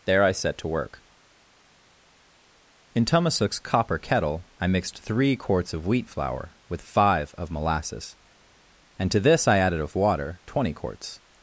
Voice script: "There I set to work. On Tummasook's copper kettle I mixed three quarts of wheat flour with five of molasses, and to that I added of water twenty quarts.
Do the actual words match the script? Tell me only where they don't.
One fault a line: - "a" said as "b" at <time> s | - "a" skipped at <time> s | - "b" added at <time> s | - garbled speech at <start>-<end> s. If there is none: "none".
- "On" said as "In" at 2.9 s
- "that" said as "this" at 9.2 s